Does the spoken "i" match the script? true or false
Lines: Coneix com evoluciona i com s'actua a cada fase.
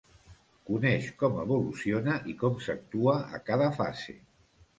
true